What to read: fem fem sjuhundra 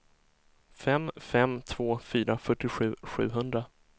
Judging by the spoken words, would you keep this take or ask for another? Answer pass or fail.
fail